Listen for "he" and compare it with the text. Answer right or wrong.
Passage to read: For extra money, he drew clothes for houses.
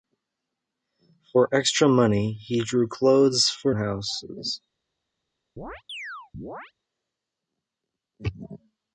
right